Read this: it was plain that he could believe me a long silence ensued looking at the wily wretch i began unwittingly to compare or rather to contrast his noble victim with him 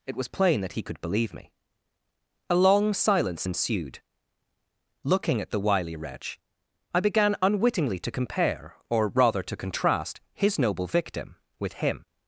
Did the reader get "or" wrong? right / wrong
right